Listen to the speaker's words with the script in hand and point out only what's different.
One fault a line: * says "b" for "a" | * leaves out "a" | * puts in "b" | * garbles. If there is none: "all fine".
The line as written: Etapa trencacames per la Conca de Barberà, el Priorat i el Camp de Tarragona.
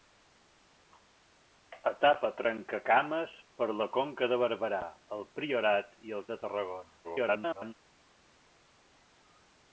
* leaves out "Camp"
* garbles